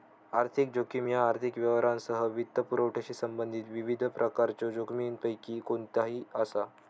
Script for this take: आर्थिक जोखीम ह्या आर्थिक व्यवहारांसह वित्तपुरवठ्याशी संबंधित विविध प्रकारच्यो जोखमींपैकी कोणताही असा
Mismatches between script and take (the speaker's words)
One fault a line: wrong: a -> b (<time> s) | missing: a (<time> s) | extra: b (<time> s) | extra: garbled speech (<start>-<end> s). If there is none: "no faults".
no faults